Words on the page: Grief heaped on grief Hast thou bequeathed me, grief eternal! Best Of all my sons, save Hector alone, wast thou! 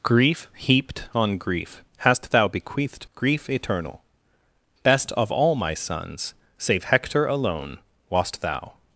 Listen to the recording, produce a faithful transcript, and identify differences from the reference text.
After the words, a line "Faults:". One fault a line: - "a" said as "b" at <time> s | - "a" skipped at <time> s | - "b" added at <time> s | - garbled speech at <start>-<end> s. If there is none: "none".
Grief heaped on grief Hast thou bequeathed grief eternal! Best Of all my sons, save Hector alone, wast thou!
Faults:
- "me" skipped at 3.1 s